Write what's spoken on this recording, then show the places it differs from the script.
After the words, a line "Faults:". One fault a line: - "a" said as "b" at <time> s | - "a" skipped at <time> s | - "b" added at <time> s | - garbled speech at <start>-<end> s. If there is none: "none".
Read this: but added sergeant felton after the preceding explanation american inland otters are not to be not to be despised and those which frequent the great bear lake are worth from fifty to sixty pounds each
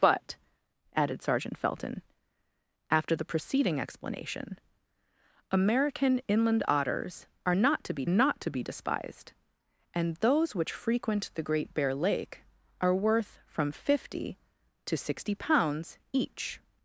but added sergeant felton after the preceding explanation american inland otters are not to be not to be despised and those which frequent the great bear lake are worth from fifty to sixty pounds each
Faults:
none